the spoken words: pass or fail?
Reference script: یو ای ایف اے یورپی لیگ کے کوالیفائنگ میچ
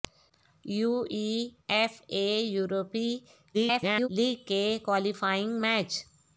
fail